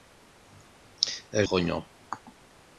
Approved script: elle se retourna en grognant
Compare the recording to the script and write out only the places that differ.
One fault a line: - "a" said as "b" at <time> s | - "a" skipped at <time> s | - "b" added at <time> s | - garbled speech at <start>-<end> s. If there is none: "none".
- "se retourna en" skipped at 1.5 s